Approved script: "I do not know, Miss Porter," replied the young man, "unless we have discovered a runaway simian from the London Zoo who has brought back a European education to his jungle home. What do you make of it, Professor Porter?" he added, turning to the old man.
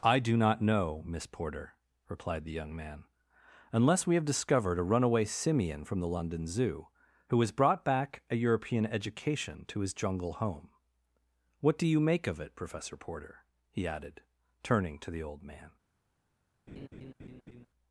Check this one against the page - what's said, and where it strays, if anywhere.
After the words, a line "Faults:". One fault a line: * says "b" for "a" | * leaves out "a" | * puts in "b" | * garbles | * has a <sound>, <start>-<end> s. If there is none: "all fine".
"I do not know, Miss Porter," replied the young man, "unless we have discovered a runaway simian from the London Zoo who has brought back a European education to his jungle home. What do you make of it, Professor Porter?" he added, turning to the old man.
Faults:
* has a laugh, 16.7-17.7 s